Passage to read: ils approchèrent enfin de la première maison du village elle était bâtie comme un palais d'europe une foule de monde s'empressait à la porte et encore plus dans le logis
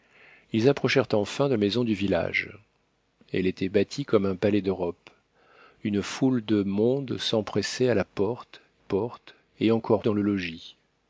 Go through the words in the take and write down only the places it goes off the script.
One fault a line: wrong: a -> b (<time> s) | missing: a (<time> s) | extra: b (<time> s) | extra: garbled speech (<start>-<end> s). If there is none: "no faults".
missing: la première (1.5 s)
extra: porte (8.8 s)
missing: plus (10.0 s)